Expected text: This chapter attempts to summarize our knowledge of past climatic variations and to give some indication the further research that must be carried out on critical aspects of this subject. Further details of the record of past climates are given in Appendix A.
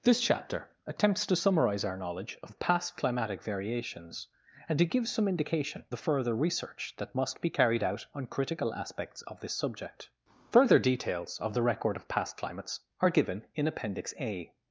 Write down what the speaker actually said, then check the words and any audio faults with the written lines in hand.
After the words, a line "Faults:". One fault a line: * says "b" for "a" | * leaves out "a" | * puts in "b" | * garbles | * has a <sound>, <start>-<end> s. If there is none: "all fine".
This chapter attempts to summarize our knowledge of past climatic variations and to give some indication the further research that must be carried out on critical aspects of this subject. Further details of the record of past climates are given in Appendix A.
Faults:
all fine